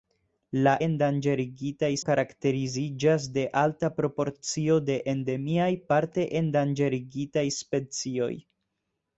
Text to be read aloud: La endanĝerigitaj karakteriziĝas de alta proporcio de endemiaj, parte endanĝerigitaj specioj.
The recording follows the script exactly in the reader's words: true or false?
true